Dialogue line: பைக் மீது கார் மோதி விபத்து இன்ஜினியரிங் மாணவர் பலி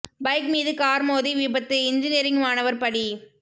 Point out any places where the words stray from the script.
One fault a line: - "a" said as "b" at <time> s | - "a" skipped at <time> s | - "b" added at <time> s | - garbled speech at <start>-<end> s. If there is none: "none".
none